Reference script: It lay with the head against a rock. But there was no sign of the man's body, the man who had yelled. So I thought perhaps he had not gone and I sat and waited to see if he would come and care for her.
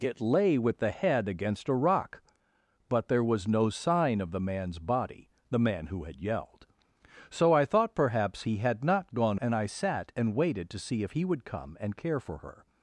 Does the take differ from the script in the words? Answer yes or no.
no